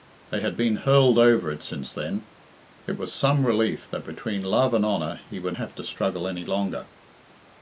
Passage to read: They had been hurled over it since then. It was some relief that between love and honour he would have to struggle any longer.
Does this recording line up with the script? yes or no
yes